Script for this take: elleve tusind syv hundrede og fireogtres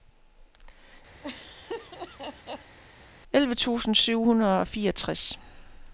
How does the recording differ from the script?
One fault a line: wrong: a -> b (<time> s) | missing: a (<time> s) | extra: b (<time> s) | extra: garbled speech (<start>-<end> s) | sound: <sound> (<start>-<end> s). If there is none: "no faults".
sound: laugh (1.2-2.8 s)